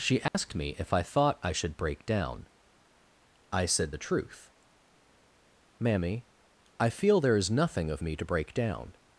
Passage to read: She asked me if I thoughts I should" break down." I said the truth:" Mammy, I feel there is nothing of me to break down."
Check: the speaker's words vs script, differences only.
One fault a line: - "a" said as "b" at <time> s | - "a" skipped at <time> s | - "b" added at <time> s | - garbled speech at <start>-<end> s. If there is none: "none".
- "thoughts" said as "thought" at 1.0 s